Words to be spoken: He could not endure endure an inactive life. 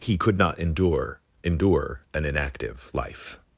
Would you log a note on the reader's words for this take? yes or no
no